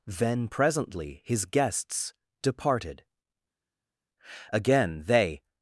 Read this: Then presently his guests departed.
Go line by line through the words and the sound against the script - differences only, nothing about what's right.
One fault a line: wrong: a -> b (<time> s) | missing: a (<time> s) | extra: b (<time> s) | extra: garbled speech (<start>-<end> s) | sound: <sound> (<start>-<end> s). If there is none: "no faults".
extra: Again they (4.5 s)